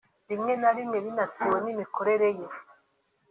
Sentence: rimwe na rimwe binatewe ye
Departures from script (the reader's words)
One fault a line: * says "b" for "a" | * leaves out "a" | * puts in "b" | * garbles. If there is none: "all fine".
* puts in "n'imikorere"